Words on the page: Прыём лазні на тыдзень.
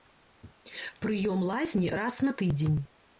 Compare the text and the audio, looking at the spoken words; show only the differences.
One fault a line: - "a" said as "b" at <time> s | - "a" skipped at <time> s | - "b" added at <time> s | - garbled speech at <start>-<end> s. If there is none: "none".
- "раз" added at 2.0 s